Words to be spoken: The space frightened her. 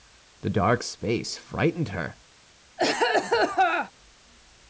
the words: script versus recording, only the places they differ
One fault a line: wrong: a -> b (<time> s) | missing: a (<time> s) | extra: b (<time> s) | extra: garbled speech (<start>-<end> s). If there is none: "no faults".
extra: dark (0.5 s)